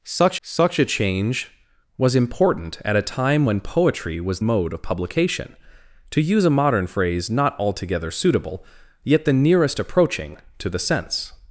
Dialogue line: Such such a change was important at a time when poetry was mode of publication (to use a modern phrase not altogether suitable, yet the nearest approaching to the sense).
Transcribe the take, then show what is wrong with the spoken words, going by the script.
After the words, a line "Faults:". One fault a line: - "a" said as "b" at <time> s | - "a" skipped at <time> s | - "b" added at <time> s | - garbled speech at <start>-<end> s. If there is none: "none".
Such such a change was important at a time when poetry was mode of publication (to use a modern phrase not altogether suitable, yet the nearest approaching to the sense).
Faults:
none